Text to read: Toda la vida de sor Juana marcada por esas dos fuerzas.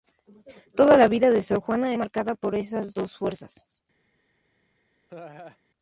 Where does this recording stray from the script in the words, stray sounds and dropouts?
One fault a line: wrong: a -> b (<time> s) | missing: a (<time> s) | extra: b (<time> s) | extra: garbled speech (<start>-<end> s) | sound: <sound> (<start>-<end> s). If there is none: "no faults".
sound: laugh (5.1-5.6 s)